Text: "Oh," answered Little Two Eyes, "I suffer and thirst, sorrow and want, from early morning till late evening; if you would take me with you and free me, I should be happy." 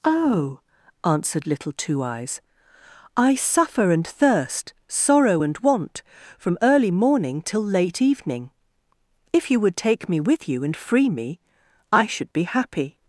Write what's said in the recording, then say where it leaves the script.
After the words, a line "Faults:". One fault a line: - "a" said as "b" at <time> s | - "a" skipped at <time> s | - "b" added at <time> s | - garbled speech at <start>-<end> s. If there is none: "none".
"Oh," answered Little Two Eyes, "I suffer and thirst, sorrow and want, from early morning till late evening; if you would take me with you and free me, I should be happy."
Faults:
none